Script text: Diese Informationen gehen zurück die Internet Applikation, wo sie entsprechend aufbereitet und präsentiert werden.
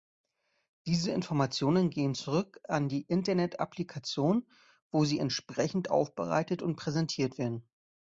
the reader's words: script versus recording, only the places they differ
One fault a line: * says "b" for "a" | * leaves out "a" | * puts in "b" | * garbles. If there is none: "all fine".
* puts in "an"